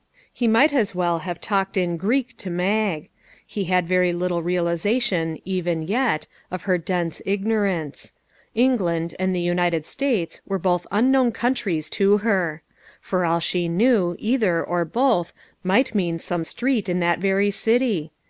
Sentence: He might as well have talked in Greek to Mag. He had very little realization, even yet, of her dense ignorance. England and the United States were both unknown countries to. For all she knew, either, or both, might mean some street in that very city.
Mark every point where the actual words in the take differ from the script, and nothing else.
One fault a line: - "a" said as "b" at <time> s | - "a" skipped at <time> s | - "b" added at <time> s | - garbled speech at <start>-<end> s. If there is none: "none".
- "her" added at 12.2 s